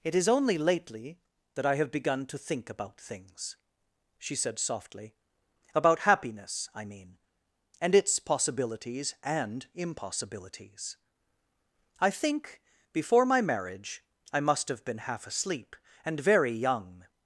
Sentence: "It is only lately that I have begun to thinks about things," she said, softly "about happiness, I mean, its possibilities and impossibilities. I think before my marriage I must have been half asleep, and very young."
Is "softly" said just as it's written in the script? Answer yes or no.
yes